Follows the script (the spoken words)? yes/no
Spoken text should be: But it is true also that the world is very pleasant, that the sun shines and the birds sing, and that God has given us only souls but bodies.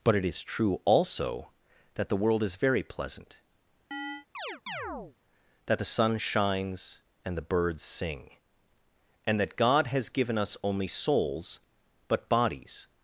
yes